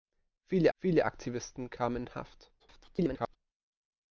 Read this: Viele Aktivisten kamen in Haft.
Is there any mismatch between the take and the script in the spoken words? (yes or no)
yes